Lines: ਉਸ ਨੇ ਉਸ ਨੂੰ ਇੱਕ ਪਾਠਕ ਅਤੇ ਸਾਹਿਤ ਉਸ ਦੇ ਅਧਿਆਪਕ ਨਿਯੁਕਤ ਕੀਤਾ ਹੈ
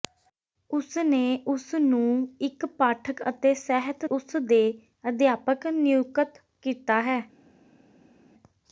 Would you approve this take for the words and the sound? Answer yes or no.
yes